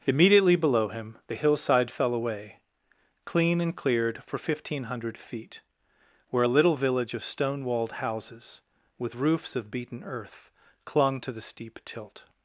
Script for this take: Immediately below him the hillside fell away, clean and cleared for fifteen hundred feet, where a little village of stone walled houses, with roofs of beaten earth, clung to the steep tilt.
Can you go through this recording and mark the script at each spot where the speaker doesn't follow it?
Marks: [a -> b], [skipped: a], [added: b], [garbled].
Immediately below him the hillside fell away, clean and cleared for fifteen hundred feet, where a little village of stone walled houses, with roofs of beaten earth, clung to the steep tilt.